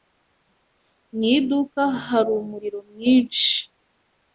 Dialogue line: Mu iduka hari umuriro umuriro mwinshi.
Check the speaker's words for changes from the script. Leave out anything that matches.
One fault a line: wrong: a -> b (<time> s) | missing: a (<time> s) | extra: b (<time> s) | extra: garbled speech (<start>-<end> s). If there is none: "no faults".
missing: umuriro (2.8 s)